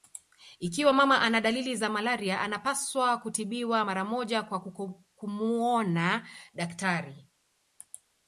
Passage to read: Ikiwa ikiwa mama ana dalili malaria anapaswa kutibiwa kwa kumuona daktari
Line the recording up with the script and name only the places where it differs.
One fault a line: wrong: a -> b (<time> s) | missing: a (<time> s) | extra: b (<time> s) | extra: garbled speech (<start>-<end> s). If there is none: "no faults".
missing: ikiwa (0.9 s)
extra: za (1.8 s)
extra: mara moja (3.8 s)